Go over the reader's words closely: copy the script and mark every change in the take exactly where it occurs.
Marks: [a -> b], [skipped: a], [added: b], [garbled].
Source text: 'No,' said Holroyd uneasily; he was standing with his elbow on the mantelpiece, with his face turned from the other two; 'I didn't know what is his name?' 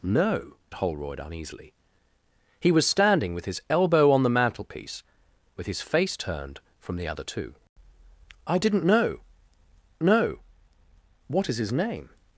'No,' [skipped: said] Holroyd uneasily; he was standing with his elbow on the mantelpiece, with his face turned from the other two; 'I didn't know [added: know] what is his name?'